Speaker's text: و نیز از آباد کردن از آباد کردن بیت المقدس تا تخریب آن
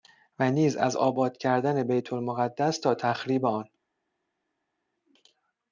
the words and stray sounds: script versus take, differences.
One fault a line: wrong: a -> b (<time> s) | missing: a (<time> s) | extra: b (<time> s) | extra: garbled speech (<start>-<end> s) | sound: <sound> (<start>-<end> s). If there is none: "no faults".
missing: از آباد کردن (1.8 s)